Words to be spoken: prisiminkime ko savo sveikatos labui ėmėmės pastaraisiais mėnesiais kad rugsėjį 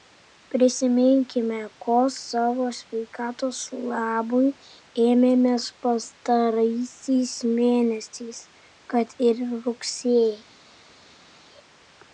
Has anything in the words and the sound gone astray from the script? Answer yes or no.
yes